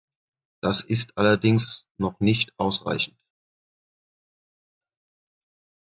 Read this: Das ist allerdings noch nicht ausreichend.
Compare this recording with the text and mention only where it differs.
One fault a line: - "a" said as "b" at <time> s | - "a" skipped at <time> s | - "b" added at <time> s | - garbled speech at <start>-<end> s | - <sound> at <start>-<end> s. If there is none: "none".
none